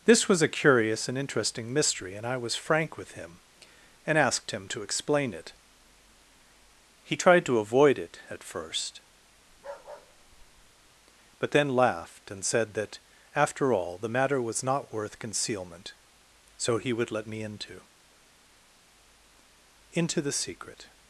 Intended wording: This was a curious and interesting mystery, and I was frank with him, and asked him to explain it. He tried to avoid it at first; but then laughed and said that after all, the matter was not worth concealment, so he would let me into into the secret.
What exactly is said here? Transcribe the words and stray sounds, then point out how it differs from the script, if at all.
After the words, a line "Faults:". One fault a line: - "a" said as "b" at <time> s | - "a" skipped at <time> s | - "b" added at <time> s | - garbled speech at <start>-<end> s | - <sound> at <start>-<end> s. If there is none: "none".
This was a curious and interesting mystery, and I was frank with him, and asked him to explain it. He tried to avoid it at first; but then laughed and said that after all, the matter was not worth concealment, so he would let me into into the secret.
Faults:
- bark at 9.5-10.9 s